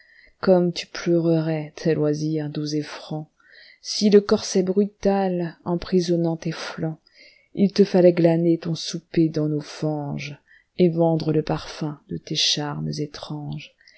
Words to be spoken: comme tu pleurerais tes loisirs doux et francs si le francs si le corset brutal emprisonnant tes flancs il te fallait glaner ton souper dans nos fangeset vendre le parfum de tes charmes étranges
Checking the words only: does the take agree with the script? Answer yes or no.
no